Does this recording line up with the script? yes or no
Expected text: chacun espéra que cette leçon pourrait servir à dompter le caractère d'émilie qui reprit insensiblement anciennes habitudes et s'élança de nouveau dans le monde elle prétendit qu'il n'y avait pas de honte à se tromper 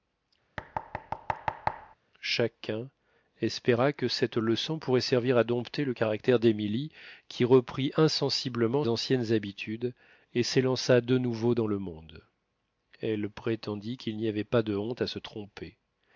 yes